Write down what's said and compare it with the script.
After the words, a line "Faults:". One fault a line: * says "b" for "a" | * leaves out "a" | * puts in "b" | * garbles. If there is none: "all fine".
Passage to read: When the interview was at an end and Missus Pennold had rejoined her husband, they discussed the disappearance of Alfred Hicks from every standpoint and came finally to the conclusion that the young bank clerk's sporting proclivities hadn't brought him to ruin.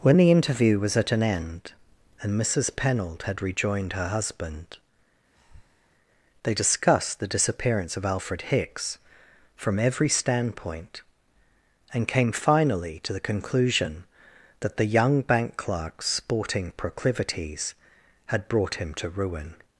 When the interview was at an end and Missus Pennold had rejoined her husband, they discussed the disappearance of Alfred Hicks from every standpoint and came finally to the conclusion that the young bank clerk's sporting proclivities had brought him to ruin.
Faults:
* says "had" for "hadn't"